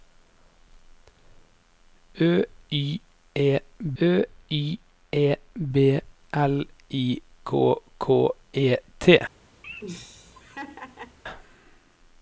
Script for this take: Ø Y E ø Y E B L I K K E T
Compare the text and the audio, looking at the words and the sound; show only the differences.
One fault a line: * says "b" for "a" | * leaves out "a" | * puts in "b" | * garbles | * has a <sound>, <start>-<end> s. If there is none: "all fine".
* has a laugh, 9.6-11.2 s